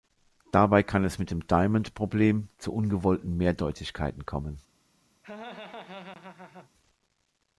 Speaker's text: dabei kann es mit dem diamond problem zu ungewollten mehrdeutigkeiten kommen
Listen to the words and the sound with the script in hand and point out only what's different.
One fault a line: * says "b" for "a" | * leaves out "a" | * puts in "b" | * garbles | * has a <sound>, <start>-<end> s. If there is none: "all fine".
* has a laugh, 5.2-6.7 s